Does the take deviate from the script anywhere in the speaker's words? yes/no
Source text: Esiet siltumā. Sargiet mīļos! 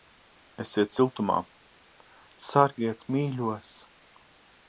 no